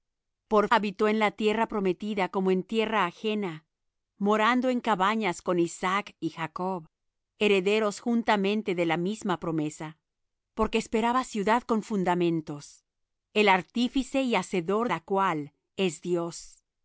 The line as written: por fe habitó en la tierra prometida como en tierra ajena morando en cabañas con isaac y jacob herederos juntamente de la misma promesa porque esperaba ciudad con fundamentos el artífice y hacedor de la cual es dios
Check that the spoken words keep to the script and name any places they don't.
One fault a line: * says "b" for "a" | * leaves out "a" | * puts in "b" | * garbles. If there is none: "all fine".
* leaves out "fe"
* leaves out "de"